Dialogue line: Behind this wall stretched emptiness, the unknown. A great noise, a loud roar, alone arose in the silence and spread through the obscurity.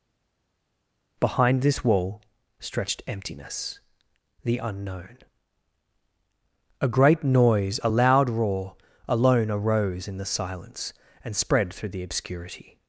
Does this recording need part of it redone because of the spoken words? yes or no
no